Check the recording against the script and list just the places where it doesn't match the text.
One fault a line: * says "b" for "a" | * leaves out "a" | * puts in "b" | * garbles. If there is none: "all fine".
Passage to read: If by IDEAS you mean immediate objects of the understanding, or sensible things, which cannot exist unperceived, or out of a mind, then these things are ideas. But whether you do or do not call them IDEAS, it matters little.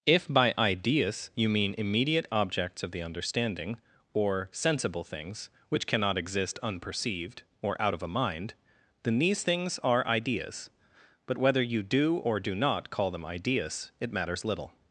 all fine